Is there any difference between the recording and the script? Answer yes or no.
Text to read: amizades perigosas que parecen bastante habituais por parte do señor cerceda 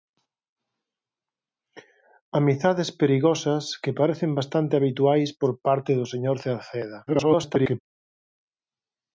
yes